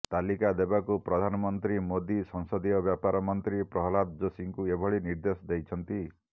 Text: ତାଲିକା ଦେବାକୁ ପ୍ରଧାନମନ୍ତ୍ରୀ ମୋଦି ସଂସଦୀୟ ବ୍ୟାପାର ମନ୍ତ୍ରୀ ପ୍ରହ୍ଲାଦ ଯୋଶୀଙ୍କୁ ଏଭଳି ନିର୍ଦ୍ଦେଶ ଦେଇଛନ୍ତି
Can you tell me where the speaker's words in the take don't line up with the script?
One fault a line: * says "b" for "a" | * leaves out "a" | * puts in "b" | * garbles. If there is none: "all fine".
all fine